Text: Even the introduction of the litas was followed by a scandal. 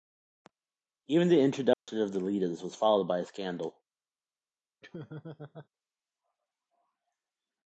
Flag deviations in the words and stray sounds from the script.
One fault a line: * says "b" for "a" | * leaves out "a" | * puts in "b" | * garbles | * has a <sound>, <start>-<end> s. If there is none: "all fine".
* has a dropout, 1.7-1.9 s
* has a laugh, 4.8-5.7 s